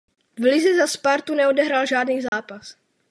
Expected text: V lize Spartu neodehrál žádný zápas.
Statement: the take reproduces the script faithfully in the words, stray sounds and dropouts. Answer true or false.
false